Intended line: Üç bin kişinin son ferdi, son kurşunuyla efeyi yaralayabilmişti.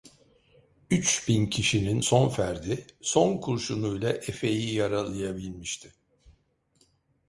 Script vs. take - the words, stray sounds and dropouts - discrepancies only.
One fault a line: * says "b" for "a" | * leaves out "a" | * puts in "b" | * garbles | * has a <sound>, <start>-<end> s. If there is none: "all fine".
all fine